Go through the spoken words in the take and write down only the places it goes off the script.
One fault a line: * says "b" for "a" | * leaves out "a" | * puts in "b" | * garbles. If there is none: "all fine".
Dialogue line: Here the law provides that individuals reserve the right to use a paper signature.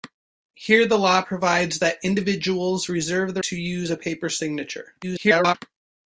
* leaves out "right"
* garbles